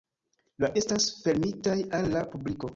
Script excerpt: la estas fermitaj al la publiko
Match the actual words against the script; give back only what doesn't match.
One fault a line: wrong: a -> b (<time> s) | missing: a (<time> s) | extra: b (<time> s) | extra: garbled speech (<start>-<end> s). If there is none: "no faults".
no faults